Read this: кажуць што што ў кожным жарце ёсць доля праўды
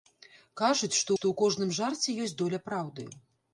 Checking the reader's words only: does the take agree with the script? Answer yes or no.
yes